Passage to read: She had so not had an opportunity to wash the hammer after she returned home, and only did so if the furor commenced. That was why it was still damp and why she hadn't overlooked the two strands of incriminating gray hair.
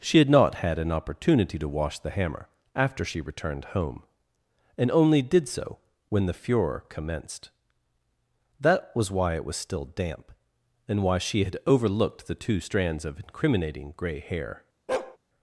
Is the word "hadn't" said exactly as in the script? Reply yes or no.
no